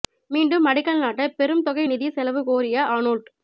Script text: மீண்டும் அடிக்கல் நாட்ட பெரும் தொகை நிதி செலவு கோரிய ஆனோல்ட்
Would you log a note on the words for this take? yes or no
no